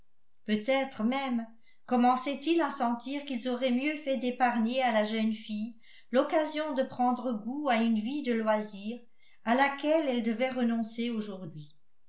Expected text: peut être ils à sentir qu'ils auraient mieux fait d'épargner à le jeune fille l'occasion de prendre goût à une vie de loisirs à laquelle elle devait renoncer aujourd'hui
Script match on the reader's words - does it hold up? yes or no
no